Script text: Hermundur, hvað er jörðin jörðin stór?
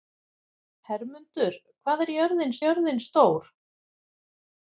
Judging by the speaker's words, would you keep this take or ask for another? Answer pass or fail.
pass